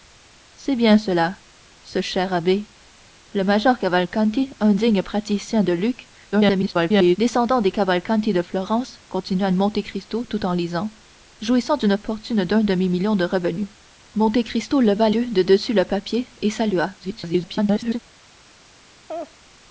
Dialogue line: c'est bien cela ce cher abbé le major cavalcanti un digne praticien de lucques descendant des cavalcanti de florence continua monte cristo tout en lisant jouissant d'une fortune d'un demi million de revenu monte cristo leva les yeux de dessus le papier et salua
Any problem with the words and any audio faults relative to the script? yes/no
yes